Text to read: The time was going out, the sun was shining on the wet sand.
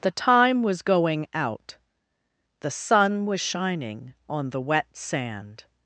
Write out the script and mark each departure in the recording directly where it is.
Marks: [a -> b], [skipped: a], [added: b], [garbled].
The time was going out, the sun was shining on the wet sand.